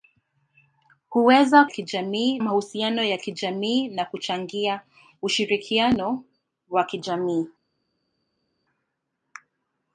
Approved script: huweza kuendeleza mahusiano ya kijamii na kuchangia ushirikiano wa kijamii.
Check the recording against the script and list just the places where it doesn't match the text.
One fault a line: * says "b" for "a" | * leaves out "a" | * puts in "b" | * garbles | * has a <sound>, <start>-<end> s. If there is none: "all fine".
* says "kijamii" for "kuendeleza"